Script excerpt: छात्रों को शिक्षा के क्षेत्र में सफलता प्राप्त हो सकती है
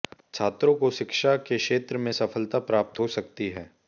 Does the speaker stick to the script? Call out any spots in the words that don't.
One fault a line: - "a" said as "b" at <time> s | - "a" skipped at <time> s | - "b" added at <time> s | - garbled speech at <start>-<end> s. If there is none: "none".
none